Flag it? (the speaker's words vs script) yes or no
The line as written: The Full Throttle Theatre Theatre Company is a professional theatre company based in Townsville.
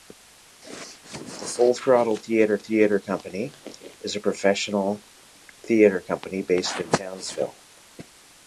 no